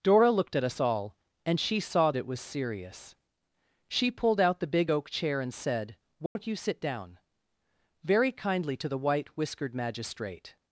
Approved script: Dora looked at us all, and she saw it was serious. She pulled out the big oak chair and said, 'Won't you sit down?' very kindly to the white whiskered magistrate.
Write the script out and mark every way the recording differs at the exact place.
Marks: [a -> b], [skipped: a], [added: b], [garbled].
Dora looked at us all, and she saw it was serious. She pulled out the big oak chair and said, 'Won't you sit down?' very kindly to the white whiskered magistrate.